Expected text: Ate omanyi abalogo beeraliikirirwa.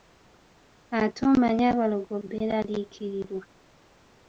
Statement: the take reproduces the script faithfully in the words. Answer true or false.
true